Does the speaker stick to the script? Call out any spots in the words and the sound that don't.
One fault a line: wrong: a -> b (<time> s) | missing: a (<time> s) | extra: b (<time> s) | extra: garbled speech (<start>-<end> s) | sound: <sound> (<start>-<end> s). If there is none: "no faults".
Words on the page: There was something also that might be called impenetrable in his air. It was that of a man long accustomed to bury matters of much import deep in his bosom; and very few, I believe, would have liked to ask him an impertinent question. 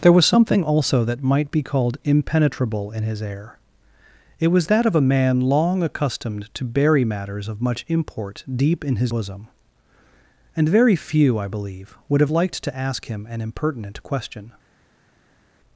no faults